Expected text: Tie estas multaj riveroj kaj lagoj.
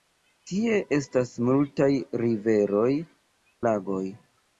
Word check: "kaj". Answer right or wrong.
wrong